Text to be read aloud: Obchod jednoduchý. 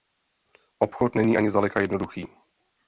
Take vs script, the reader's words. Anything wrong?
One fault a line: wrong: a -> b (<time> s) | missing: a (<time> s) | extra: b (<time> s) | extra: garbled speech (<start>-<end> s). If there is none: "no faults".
extra: není ani zdaleka (1.1 s)